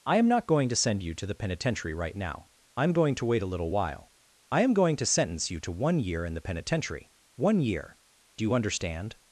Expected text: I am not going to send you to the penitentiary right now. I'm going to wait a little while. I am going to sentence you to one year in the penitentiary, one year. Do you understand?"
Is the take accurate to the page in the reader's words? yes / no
yes